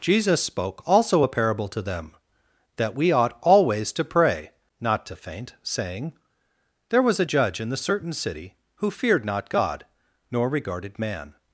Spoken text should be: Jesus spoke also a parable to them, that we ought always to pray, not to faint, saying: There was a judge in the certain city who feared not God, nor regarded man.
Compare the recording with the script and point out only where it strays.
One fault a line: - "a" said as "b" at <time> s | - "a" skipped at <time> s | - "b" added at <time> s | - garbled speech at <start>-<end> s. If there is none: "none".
none